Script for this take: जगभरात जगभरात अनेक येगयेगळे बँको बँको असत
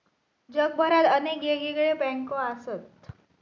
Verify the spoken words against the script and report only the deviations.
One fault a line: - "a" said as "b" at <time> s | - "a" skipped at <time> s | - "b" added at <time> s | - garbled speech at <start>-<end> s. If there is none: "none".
- "जगभरात" skipped at 1.1 s
- "बँको" skipped at 2.4 s